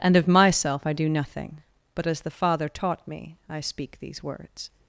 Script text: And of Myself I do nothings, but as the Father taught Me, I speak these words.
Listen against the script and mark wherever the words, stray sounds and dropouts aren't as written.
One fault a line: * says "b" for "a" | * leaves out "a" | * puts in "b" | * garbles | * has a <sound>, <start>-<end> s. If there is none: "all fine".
* says "nothing" for "nothings"